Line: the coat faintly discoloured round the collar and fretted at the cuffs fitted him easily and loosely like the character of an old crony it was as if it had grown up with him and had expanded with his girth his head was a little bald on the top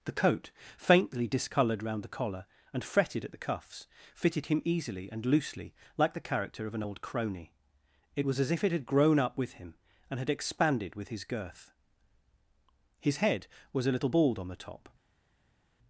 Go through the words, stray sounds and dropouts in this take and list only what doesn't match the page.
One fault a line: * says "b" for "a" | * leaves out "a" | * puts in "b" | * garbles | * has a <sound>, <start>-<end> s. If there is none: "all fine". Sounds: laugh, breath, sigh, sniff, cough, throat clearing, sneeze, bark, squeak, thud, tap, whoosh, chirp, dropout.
all fine